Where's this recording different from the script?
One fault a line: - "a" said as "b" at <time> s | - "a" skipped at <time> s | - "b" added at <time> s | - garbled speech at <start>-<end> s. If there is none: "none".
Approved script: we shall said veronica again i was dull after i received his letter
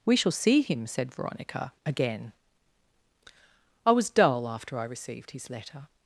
- "see him" added at 0.3 s